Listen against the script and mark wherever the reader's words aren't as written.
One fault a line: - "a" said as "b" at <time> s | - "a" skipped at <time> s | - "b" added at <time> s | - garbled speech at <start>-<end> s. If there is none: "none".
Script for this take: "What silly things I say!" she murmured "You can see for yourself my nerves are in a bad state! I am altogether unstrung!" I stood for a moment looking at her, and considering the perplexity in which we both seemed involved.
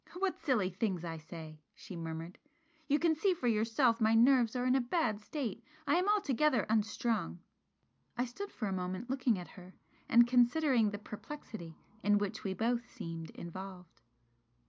none